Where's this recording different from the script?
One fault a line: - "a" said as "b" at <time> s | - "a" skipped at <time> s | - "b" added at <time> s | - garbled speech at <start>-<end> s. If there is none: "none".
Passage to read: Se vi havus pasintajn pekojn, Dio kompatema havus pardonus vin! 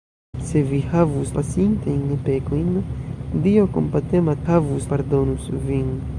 none